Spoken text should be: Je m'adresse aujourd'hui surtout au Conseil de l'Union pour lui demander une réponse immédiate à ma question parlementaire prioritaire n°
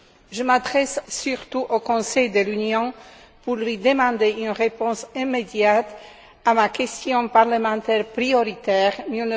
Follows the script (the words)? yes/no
no